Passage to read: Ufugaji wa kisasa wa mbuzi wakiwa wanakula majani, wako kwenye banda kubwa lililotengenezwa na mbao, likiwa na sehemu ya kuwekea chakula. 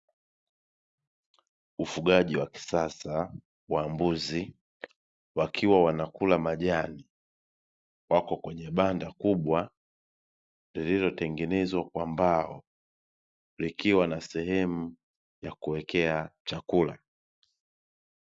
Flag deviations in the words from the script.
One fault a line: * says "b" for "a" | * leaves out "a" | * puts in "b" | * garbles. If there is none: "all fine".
* says "kwa" for "na"